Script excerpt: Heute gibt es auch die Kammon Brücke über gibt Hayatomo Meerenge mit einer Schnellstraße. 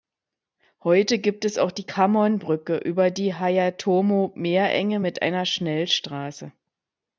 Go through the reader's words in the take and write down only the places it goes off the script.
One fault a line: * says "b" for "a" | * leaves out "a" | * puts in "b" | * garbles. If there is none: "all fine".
* says "die" for "gibt"